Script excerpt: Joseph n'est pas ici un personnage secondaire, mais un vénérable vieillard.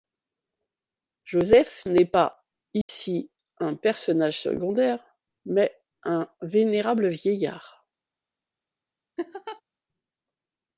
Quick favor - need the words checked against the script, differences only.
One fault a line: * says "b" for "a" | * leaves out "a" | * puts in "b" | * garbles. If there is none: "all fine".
all fine